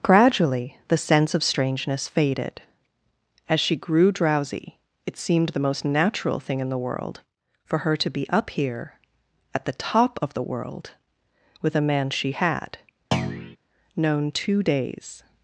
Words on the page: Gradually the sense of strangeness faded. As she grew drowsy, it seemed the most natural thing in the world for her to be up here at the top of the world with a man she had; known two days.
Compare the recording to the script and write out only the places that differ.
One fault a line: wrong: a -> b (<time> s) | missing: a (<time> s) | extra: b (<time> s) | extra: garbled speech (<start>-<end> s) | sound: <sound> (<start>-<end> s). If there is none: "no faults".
sound: thud (13.1-13.6 s)